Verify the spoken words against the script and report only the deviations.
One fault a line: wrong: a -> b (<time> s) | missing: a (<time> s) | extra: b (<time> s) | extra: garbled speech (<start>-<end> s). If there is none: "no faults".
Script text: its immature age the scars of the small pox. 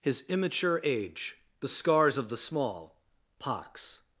wrong: its -> his (0.0 s)